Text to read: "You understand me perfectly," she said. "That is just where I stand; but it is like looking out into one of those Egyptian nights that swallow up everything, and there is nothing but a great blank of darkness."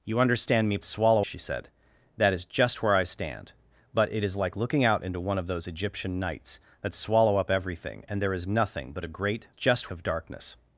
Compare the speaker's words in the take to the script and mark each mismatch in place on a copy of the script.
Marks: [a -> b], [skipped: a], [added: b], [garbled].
"You understand me [perfectly," -> swallow] she said. "That is just where I stand; but it is like looking out into one of those Egyptian nights that swallow up everything, and there is nothing but a great [blank -> just] of darkness."